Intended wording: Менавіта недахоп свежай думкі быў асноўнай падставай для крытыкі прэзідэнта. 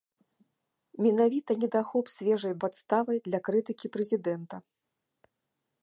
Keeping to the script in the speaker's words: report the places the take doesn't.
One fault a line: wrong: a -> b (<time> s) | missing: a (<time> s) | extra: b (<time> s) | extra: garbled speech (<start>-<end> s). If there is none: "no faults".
missing: думкі быў асноўнай (2.5 s)